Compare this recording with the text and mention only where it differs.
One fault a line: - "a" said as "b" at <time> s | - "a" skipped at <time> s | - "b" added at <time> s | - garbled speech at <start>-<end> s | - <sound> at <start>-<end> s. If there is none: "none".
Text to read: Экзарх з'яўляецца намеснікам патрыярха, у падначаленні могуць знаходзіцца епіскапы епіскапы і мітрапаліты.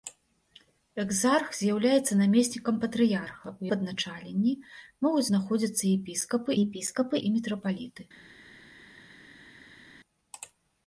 none